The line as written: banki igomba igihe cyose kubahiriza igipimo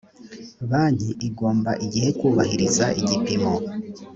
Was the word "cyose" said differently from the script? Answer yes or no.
yes